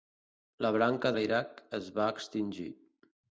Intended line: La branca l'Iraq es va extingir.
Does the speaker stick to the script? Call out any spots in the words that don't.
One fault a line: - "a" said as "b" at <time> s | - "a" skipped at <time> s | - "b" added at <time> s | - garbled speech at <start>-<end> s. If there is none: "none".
none